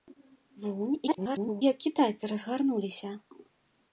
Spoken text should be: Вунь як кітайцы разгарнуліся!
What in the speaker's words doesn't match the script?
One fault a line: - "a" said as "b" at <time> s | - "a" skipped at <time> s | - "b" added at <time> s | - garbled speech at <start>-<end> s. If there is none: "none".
- garbled speech at 1.1-1.6 s